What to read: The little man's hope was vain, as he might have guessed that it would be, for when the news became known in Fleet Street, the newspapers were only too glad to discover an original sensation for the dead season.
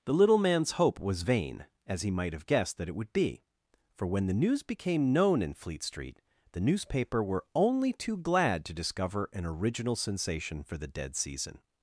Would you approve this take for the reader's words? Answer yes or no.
no